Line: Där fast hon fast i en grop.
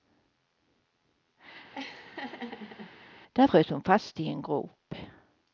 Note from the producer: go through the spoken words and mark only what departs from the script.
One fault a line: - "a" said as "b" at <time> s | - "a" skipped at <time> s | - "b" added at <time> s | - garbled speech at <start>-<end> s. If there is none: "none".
- "fast" said as "frös" at 3.4 s